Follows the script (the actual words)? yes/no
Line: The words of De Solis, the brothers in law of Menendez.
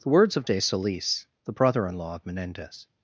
no